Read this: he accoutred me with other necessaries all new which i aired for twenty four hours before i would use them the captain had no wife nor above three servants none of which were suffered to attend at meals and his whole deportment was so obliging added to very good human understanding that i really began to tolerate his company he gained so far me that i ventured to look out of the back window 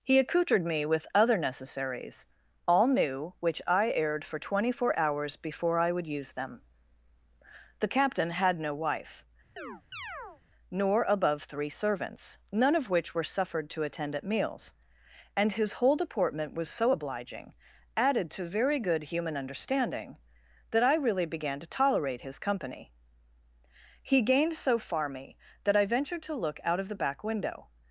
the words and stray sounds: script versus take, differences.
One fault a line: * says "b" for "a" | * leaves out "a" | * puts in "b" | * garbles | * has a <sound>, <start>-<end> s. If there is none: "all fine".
* has a chirp, 9.6-10.4 s